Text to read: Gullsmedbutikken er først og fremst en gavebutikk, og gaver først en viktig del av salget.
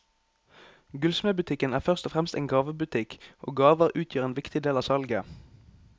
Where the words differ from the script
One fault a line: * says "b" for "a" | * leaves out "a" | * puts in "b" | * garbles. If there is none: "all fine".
* says "utgjør" for "først"